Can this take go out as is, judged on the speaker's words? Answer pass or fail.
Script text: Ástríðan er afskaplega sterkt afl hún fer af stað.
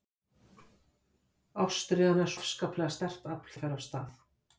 pass